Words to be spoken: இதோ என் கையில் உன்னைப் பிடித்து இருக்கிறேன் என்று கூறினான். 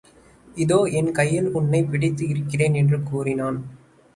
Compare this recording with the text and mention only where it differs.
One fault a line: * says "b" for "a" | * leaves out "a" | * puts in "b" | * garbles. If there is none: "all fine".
all fine